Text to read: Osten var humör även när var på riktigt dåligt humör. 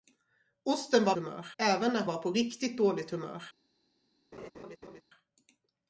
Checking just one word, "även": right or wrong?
right